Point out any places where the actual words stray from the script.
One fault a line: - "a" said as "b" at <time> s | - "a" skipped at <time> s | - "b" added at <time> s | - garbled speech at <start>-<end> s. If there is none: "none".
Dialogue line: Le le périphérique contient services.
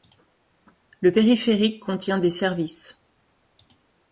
- "le" skipped at 1.1 s
- "des" added at 2.2 s